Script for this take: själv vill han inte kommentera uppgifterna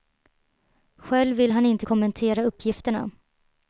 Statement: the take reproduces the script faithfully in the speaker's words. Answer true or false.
true